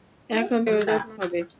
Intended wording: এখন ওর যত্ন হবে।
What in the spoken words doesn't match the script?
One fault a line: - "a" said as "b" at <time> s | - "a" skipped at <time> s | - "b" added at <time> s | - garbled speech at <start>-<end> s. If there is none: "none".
none